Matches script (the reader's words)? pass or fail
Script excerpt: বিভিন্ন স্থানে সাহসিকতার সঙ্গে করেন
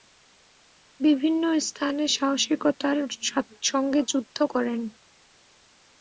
fail